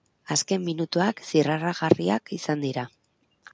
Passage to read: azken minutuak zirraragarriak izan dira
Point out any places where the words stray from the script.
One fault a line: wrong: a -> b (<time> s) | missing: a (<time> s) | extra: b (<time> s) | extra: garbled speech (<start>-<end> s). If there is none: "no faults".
no faults